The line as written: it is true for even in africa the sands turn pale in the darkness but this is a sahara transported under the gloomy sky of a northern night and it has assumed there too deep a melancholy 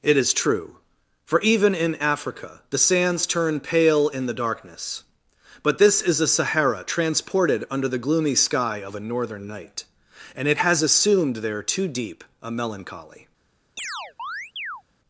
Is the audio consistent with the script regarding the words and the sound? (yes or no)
no